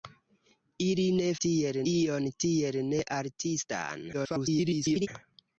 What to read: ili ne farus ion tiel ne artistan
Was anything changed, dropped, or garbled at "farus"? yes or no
yes